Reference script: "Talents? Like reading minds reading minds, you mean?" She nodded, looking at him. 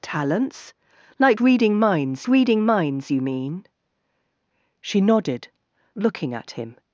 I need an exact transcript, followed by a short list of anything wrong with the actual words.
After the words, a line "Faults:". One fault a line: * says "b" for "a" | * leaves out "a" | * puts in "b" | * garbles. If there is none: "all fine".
"Talents? Like reading minds reading minds, you mean?" She nodded, looking at him.
Faults:
all fine